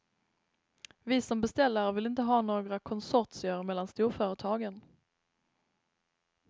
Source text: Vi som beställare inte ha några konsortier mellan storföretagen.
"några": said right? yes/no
yes